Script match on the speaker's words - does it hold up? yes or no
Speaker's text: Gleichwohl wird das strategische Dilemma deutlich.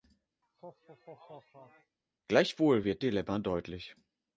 no